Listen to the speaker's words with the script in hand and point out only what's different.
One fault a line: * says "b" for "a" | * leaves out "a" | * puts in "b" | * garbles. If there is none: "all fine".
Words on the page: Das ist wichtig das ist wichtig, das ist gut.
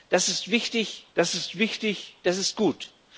all fine